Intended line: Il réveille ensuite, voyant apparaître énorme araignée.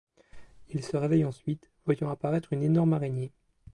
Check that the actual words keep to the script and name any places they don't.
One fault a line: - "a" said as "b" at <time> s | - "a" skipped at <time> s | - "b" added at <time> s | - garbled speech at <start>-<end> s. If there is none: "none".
- "se" added at 0.8 s
- "une" added at 2.5 s